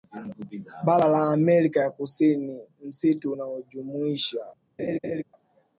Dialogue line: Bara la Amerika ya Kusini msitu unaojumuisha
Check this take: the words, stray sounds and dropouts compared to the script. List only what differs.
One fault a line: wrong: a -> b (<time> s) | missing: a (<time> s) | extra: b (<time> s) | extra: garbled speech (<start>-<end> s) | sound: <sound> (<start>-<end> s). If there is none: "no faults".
sound: laugh (4.8-5.2 s)